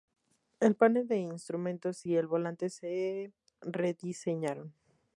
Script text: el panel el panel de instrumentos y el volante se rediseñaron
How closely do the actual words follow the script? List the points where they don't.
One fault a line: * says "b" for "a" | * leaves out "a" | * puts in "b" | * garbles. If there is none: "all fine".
* leaves out "el panel"